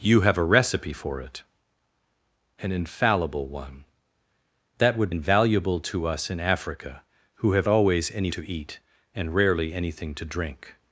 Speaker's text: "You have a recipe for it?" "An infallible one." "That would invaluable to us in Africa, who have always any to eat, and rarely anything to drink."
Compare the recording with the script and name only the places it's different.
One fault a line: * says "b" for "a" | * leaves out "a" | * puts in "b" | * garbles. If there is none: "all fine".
all fine